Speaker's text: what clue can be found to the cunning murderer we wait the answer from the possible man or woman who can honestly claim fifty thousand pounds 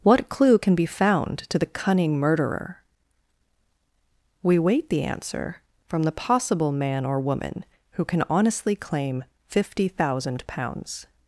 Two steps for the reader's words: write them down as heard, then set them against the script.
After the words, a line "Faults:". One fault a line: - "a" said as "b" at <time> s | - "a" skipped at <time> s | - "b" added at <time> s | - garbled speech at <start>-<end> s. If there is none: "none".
what clue can be found to the cunning murderer we wait the answer from the possible man or woman who can honestly claim fifty thousand pounds
Faults:
none